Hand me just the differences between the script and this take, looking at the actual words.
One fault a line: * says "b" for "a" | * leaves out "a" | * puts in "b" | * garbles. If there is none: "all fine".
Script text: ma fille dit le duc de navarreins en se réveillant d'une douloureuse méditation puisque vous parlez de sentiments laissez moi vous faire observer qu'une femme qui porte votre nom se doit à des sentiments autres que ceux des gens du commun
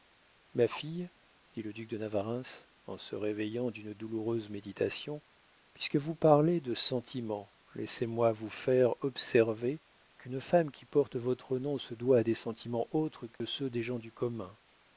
all fine